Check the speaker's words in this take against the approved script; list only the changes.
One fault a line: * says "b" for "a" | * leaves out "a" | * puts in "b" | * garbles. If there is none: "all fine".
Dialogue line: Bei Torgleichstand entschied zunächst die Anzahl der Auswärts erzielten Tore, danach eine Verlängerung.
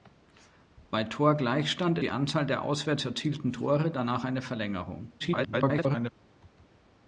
* leaves out "entschied zunächst"
* garbles